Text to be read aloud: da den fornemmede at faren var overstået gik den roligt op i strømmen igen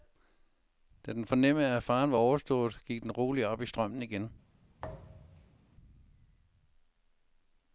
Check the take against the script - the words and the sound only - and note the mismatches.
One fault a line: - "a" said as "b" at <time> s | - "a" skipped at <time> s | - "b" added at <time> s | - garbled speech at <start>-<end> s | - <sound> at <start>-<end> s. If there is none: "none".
- thud at 4.8-5.6 s